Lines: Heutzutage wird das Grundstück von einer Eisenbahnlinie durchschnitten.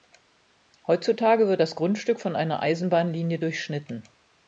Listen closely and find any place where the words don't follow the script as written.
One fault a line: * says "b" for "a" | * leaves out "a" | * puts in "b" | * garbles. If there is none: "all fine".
all fine